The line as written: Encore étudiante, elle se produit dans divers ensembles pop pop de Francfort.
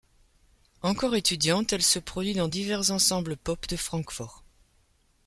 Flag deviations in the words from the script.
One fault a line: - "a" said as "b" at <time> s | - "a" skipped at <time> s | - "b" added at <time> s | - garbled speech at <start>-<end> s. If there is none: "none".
- "pop" skipped at 3.7 s